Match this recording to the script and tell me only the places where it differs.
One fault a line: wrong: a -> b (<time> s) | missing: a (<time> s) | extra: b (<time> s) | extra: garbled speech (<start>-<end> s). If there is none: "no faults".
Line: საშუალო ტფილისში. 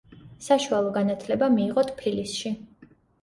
extra: განათლება მიიღო (1.0 s)